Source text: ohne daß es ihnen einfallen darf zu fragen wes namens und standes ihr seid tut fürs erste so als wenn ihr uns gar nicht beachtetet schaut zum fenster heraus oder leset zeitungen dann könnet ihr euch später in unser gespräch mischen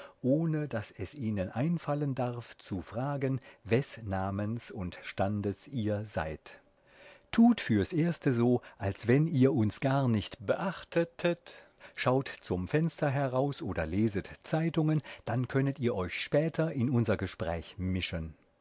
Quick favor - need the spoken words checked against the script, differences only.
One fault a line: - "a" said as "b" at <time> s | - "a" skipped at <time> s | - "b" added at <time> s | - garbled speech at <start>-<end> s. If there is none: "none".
none